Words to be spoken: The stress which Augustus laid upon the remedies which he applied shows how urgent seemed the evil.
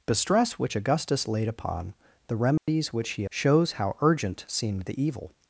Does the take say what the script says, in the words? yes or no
no